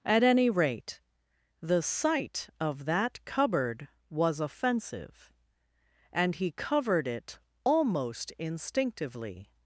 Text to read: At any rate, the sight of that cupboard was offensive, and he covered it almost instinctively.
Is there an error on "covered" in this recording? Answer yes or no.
no